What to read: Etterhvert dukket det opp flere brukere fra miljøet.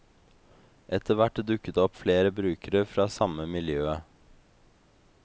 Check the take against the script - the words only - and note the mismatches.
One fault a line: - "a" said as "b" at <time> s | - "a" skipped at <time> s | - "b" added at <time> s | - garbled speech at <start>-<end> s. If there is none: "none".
- "samme" added at 3.2 s